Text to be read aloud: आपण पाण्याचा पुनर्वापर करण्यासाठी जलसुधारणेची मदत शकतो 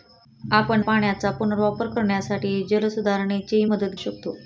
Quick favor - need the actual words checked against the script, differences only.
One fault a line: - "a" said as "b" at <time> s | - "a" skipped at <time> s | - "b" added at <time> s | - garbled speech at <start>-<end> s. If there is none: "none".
none